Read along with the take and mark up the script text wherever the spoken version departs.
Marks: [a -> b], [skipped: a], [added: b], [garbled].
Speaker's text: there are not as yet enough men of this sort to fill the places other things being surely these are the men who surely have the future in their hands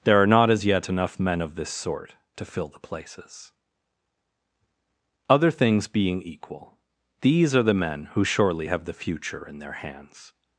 there are not as yet enough men of this sort to fill the places other things being [surely -> equal] these are the men who surely have the future in their hands